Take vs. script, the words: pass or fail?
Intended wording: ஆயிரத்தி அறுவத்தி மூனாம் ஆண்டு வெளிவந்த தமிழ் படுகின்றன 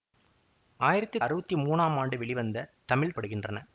pass